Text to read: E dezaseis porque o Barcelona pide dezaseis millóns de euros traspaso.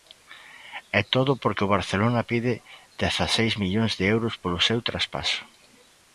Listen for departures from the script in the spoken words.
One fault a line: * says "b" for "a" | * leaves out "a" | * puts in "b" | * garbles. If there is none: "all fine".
* says "todo" for "dezaseis"
* puts in "polo seu"